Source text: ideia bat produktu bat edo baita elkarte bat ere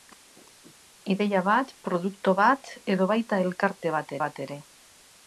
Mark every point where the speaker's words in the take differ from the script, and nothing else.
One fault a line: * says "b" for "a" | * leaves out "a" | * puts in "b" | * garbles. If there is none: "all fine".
* puts in "bat"